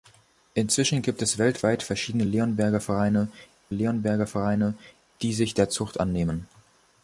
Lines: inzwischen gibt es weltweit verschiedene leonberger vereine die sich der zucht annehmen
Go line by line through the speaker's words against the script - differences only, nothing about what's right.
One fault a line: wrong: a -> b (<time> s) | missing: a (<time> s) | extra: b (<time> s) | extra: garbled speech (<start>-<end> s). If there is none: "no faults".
extra: leonberger vereine (3.7 s)